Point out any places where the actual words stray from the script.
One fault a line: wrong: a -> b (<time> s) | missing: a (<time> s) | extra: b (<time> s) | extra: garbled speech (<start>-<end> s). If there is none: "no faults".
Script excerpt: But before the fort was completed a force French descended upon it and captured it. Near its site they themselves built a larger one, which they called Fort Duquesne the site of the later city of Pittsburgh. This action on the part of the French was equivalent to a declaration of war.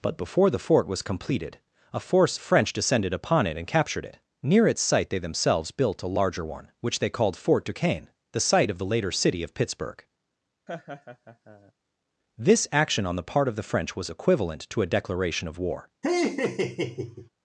no faults